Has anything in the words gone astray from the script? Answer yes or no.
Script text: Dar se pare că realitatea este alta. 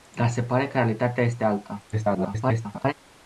yes